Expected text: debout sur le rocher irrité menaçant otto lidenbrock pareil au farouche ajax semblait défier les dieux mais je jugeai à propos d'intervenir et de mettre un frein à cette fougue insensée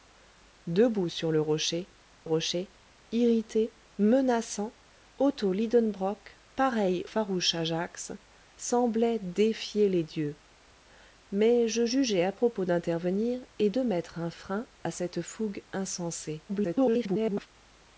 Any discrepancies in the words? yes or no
yes